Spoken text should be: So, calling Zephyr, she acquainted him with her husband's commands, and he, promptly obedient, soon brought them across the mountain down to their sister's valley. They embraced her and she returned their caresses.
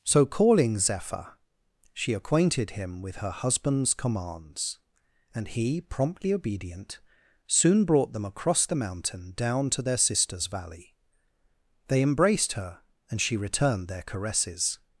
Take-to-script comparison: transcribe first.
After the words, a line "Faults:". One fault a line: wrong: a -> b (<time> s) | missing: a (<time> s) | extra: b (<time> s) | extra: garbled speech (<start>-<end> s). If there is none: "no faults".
So, calling Zephyr, she acquainted him with her husband's commands, and he, promptly obedient, soon brought them across the mountain down to their sister's valley. They embraced her and she returned their caresses.
Faults:
no faults